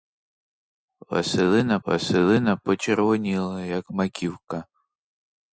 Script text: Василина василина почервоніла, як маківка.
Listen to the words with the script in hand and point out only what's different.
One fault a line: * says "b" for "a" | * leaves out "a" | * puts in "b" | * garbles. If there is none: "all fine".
all fine